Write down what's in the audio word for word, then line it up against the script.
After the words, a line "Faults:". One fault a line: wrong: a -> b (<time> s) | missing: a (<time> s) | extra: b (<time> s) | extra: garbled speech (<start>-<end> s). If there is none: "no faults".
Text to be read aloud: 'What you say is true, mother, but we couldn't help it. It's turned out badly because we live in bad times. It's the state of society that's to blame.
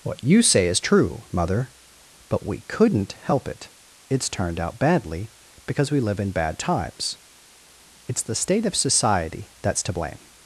'What you say is true, mother, but we couldn't help it. It's turned out badly because we live in bad times. It's the state of society that's to blame.
Faults:
no faults